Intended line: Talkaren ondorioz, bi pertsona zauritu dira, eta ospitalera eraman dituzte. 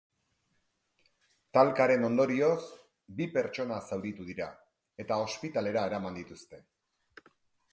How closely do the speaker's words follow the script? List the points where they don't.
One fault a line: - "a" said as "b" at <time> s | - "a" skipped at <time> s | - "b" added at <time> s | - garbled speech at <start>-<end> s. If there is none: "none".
none